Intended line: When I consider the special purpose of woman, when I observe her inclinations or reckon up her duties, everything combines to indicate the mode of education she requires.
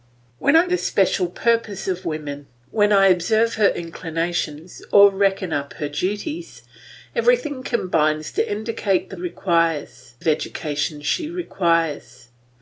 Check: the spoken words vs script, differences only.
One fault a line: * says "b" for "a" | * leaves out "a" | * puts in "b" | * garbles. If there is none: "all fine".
* leaves out "consider"
* says "requires" for "mode"